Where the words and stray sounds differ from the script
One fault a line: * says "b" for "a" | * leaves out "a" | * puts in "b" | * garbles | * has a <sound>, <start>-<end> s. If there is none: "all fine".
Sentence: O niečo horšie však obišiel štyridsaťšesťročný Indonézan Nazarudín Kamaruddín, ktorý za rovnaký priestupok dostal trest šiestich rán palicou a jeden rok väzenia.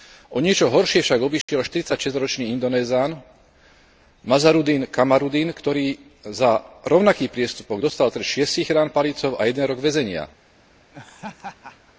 * has a dropout, 1.4-1.5 s
* has a laugh, 10.9-11.9 s